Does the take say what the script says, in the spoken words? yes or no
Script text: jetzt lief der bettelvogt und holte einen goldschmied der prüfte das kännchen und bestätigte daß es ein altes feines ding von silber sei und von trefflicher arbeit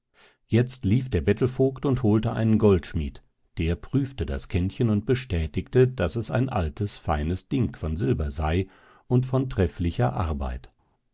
yes